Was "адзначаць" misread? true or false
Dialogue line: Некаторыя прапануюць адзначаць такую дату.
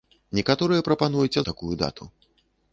true